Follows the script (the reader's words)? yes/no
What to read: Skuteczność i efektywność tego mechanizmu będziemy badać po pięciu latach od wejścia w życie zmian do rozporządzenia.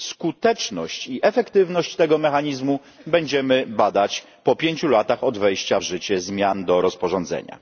yes